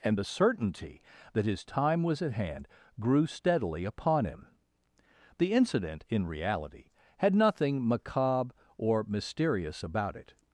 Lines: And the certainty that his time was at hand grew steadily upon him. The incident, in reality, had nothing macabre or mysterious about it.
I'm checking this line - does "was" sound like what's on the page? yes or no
yes